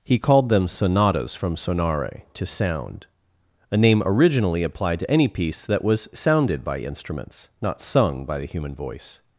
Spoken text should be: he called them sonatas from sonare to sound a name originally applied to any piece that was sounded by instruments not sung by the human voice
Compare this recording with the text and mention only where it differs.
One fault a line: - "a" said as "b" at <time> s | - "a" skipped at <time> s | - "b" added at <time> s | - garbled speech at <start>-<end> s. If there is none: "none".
none